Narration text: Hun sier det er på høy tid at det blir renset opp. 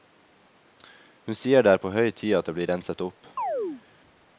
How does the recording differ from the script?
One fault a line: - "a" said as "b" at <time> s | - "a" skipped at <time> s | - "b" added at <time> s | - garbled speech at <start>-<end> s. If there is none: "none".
none